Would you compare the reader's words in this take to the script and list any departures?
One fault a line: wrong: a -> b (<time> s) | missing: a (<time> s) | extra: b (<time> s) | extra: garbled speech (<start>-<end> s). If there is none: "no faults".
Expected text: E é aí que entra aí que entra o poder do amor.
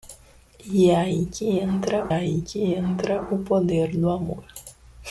no faults